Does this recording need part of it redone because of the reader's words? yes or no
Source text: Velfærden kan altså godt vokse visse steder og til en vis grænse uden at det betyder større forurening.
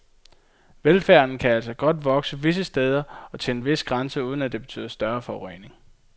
no